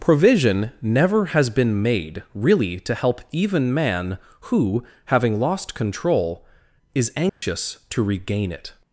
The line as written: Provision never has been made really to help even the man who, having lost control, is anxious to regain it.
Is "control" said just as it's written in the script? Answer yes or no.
yes